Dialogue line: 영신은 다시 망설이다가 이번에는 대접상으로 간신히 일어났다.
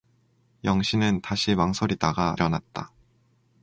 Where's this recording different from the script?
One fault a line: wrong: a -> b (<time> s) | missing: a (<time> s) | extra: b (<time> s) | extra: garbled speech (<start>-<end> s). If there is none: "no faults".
missing: 이번에는 대접상으로 간신히 (2.4 s)